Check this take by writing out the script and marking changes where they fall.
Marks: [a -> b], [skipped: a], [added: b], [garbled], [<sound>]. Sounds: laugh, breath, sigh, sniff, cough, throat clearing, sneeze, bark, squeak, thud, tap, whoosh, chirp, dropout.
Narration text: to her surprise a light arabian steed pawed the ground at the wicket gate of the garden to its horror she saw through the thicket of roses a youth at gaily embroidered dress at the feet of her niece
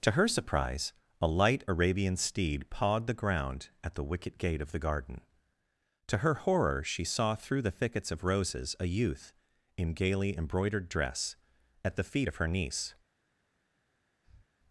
to her surprise a light arabian steed pawed the ground at the wicket gate of the garden to [its -> her] horror she saw through the [thicket -> thickets] of roses a youth [at -> in] gaily embroidered dress at the feet of her niece [breath]